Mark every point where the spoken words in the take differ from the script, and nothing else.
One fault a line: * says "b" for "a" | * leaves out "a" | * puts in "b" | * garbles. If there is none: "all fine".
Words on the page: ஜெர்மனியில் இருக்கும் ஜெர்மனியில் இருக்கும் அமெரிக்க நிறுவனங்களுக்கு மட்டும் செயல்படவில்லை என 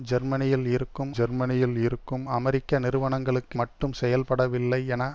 all fine